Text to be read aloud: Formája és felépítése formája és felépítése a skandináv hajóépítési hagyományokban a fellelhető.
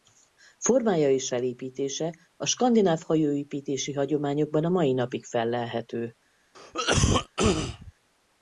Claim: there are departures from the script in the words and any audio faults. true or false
true